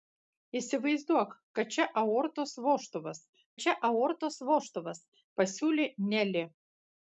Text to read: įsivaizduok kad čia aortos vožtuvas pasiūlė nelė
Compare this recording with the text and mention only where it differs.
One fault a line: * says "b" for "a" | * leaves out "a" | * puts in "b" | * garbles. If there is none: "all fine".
* puts in "čia aortos vožtuvas"